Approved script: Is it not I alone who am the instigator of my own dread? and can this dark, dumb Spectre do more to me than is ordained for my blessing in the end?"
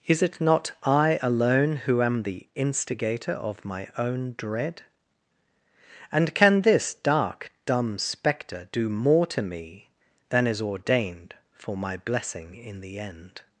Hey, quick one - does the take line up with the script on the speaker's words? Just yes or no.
yes